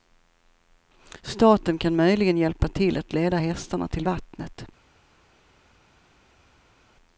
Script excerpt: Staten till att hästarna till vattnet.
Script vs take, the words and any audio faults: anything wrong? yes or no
yes